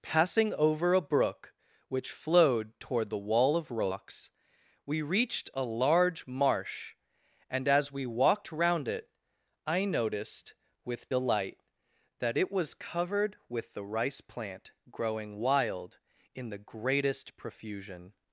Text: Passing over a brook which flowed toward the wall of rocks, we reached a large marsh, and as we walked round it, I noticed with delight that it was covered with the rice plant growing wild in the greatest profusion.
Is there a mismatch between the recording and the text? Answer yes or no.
no